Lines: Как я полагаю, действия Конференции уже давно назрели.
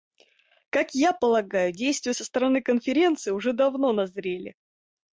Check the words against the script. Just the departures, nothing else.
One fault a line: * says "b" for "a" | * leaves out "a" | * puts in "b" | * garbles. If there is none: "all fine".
* puts in "со стороны"